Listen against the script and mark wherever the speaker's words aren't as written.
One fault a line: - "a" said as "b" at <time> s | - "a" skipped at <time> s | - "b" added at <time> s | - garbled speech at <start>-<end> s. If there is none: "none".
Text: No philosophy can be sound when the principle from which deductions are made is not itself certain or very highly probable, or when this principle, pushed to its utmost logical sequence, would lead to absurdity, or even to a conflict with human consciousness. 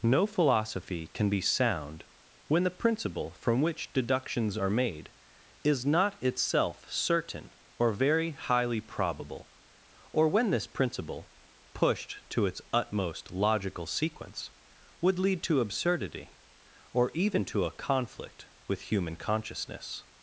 none